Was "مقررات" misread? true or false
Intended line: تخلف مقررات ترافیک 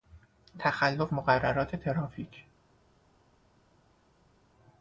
false